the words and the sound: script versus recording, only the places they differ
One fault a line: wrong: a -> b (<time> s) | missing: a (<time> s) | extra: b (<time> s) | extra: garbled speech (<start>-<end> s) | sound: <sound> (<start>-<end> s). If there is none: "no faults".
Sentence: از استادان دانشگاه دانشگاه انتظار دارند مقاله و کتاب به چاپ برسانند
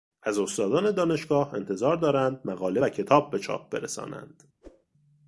missing: دانشگاه (1.5 s)
sound: whoosh (4.6-4.9 s)